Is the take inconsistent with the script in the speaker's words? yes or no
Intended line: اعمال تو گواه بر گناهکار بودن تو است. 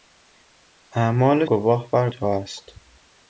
yes